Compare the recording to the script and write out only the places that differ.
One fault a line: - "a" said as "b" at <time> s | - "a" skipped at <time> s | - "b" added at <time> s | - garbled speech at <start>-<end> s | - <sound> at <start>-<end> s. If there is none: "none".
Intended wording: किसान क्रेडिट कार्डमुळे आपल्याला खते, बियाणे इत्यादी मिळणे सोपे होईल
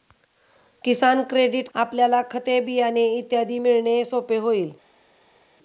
- "कार्डमुळे" skipped at 1.7 s